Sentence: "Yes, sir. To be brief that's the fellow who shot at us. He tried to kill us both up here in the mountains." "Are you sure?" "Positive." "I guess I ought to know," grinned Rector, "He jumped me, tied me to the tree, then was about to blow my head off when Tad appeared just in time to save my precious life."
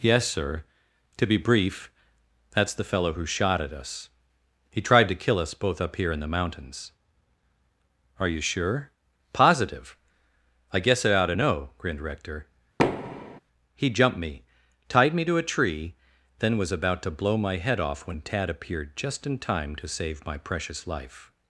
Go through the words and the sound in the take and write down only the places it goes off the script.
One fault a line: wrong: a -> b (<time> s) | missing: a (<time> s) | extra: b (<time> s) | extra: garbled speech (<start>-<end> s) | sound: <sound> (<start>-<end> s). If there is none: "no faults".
sound: thud (12.8-13.4 s)
wrong: the -> a (15.4 s)